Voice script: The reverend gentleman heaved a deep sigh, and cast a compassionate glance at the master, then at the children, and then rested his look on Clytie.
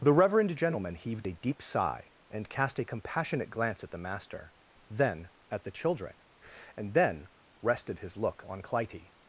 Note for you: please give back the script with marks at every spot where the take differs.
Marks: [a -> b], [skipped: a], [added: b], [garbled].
The reverend gentleman heaved a deep sigh, and cast a compassionate glance at the master, then at the children, and then rested his look on Clytie.